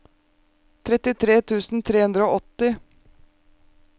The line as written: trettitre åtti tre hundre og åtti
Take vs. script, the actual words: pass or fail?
fail